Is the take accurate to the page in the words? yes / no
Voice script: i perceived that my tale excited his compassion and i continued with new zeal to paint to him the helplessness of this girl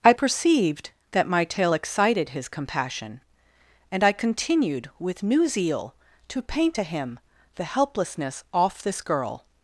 no